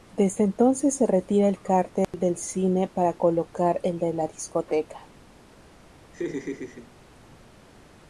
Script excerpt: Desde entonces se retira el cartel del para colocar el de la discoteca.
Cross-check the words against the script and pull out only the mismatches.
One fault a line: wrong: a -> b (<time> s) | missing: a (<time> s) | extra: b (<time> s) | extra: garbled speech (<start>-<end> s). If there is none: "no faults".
extra: cine (2.4 s)